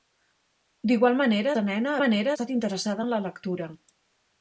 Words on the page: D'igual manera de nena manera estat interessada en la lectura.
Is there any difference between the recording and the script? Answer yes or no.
no